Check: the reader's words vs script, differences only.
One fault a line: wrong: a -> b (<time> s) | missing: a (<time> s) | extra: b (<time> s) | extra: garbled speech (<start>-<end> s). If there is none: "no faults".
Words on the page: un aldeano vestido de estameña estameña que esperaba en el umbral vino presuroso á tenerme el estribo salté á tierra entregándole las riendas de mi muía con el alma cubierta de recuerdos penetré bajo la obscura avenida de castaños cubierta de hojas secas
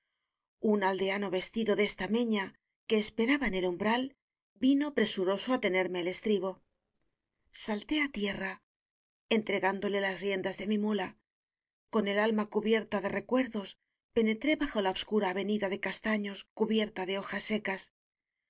missing: estameña (2.5 s)